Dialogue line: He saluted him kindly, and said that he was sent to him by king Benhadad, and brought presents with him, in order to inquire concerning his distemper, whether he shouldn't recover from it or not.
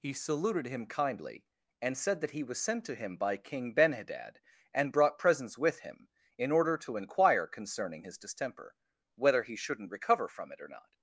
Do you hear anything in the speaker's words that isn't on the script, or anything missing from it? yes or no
no